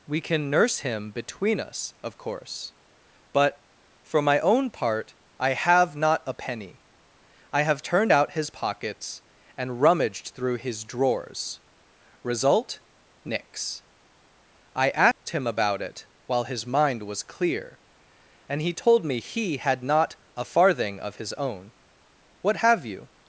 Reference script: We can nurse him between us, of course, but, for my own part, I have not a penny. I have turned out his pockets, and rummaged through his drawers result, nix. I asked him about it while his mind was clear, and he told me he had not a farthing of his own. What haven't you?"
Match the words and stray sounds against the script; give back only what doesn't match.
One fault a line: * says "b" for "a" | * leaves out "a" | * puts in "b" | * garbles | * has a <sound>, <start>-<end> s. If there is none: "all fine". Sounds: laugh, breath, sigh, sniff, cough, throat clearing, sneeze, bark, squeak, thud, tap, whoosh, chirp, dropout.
* has a dropout, 15.1-15.3 s
* says "have" for "haven't"